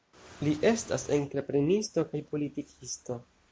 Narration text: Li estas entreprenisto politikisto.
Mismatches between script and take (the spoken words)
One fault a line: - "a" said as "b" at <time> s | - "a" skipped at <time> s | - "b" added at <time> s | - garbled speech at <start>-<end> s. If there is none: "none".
- "kaj" added at 2.1 s